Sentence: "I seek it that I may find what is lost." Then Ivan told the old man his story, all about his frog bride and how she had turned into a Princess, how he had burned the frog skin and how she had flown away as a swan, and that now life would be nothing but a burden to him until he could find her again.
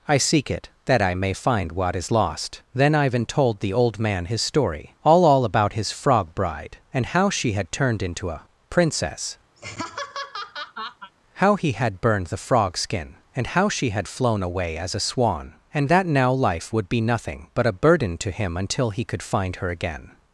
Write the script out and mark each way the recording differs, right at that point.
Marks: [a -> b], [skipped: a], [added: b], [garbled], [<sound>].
"I seek it that I may find what is lost." Then Ivan told the old man his story, all [added: all] about his frog bride and how she had turned into a Princess, [laugh] how he had burned the frog skin and how she had flown away as a swan, and that now life would be nothing but a burden to him until he could find her again.